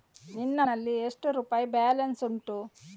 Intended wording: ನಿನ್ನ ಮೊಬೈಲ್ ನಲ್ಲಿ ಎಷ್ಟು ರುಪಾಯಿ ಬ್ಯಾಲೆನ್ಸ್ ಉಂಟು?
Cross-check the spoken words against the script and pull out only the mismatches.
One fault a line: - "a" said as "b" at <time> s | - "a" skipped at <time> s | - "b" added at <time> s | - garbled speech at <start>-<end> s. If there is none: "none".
- "ಮೊಬೈಲ್" skipped at 0.6 s